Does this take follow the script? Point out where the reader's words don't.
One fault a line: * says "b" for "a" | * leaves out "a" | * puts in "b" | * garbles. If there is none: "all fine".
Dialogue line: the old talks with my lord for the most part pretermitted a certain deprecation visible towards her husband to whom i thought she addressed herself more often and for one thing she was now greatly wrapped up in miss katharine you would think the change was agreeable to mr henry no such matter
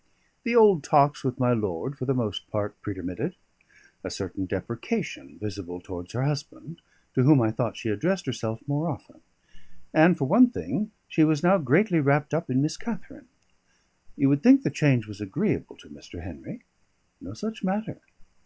all fine